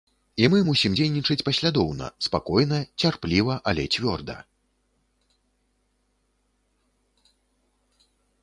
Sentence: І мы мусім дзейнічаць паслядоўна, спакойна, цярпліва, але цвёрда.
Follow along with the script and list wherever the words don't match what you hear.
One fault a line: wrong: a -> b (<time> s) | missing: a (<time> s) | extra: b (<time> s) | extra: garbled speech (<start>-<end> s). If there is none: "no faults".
no faults